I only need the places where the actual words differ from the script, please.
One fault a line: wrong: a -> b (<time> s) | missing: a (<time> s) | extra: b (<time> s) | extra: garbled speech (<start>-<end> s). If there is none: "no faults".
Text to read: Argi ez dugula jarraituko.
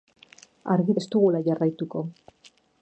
no faults